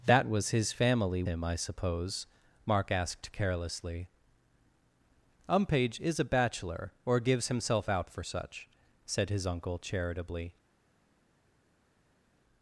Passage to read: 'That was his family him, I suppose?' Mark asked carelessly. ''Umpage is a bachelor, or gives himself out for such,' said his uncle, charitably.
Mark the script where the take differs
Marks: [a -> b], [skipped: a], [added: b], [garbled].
'That was his family him, I suppose?' Mark asked carelessly. ''Umpage is a bachelor, or gives himself out for such,' said his uncle, charitably.